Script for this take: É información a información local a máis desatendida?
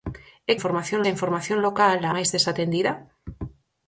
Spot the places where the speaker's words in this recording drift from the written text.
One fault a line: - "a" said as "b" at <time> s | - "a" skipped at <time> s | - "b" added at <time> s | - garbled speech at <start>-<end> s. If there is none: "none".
none